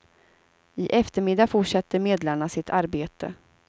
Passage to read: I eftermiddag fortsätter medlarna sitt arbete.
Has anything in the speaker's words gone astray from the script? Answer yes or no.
no